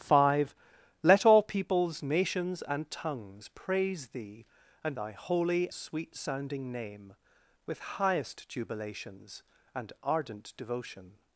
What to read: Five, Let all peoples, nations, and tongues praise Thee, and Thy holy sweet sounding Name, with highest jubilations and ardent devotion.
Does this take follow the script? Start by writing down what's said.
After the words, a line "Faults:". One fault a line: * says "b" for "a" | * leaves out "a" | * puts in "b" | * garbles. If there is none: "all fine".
Five, Let all peoples, nations, and tongues praise Thee, and Thy holy sweet sounding Name, with highest jubilations and ardent devotion.
Faults:
all fine